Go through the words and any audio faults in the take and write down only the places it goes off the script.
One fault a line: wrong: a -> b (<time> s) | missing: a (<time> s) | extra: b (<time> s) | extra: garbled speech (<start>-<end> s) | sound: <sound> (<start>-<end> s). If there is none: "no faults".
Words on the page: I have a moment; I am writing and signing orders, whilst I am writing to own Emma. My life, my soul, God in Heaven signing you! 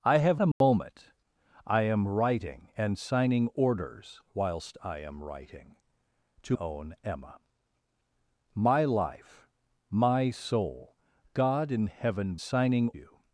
sound: dropout (0.5-0.6 s)